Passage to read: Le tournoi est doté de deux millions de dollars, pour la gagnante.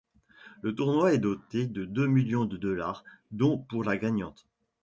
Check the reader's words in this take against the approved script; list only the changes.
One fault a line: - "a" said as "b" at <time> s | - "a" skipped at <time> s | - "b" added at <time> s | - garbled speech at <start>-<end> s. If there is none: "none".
- "dont" added at 3.3 s